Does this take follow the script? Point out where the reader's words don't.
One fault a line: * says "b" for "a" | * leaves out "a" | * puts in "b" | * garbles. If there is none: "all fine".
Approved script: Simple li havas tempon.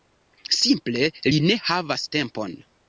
* puts in "ne"